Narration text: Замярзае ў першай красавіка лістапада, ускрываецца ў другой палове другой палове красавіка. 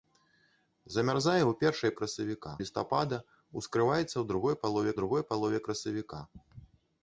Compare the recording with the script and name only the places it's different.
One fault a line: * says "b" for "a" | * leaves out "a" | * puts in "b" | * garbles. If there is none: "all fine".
all fine